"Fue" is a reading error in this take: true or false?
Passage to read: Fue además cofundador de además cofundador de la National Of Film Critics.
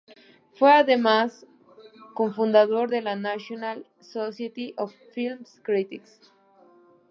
false